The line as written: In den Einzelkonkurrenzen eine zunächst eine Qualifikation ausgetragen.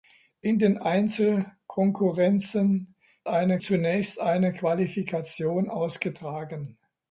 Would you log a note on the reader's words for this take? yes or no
no